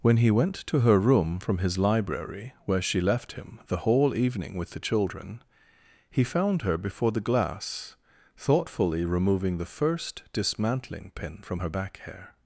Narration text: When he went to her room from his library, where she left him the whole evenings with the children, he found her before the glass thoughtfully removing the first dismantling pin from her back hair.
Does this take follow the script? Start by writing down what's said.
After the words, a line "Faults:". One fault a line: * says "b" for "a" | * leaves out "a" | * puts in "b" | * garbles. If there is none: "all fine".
When he went to her room from his library, where she left him the whole evening with the children, he found her before the glass thoughtfully removing the first dismantling pin from her back hair.
Faults:
* says "evening" for "evenings"